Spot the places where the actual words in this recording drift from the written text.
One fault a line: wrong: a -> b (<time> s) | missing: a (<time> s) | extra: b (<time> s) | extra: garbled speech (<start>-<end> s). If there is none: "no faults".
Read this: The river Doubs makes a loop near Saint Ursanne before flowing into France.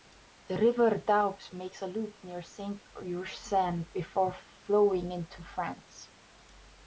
no faults